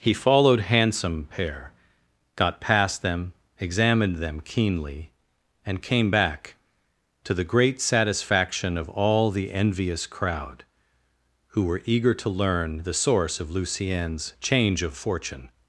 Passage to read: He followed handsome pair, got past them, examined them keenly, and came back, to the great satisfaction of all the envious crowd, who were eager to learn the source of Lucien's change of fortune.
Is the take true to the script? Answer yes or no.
yes